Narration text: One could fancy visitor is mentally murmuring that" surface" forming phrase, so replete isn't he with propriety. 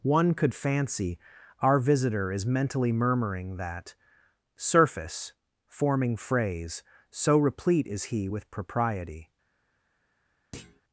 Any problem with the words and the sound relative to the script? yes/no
yes